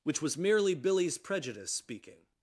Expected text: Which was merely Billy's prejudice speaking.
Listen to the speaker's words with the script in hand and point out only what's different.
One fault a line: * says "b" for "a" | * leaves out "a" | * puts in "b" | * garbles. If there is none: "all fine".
all fine